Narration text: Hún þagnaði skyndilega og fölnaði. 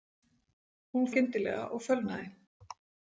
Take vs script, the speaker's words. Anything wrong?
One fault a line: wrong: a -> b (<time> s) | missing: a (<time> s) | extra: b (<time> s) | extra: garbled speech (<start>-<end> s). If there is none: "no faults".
missing: þagnaði (1.1 s)